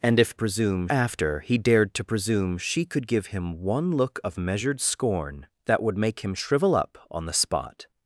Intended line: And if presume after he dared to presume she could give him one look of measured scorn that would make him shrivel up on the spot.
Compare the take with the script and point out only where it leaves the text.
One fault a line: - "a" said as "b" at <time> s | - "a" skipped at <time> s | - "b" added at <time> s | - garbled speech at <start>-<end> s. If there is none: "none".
none